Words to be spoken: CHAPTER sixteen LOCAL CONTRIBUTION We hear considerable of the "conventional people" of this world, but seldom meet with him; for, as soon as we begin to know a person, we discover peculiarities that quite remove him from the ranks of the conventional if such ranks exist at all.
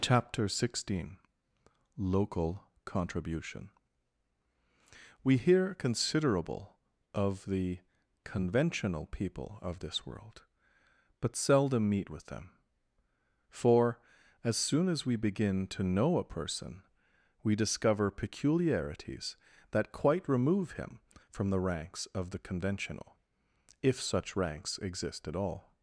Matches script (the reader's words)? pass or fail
fail